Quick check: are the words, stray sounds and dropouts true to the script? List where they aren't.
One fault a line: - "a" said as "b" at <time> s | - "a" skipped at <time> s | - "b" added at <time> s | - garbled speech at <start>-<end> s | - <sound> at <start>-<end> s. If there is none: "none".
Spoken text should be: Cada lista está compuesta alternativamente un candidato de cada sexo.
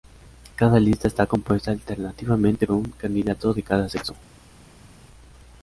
none